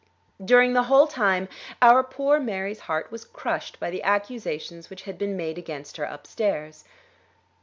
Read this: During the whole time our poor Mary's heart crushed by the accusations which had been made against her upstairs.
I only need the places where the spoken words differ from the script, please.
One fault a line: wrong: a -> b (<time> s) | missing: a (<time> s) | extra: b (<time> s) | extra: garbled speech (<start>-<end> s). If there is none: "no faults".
extra: was (3.1 s)